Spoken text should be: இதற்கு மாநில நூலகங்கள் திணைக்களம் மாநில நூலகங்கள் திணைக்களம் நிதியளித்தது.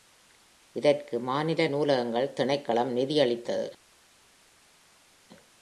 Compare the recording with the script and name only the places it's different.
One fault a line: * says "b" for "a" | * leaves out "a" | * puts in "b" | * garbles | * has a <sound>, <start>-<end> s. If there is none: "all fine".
* leaves out "மாநில நூலகங்கள் திணைக்களம்"